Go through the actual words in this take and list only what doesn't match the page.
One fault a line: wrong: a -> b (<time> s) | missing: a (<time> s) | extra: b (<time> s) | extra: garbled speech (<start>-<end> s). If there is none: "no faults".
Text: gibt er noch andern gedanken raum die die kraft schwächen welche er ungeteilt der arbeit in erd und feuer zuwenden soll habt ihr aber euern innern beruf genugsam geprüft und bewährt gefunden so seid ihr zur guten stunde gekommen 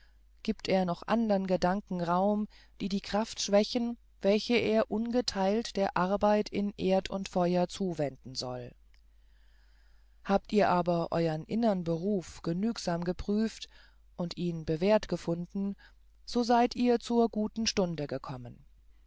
extra: ihn (14.4 s)